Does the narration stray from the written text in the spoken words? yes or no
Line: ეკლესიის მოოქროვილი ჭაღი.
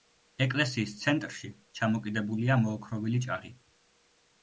yes